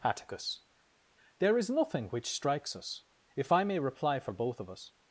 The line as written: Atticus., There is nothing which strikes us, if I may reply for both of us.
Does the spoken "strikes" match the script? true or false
true